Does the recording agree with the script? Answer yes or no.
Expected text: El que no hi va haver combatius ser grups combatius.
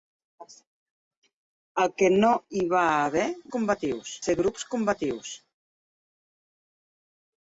yes